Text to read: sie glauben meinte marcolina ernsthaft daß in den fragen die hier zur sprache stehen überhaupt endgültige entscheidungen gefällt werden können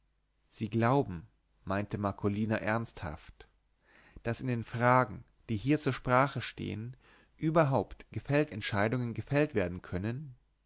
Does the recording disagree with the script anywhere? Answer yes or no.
yes